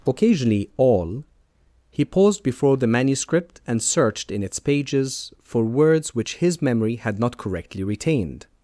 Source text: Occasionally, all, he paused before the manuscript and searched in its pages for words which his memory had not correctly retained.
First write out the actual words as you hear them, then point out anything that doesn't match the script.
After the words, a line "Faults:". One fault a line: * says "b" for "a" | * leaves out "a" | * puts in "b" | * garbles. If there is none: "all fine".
Occasionally, all, he paused before the manuscript and searched in its pages for words which his memory had not correctly retained.
Faults:
all fine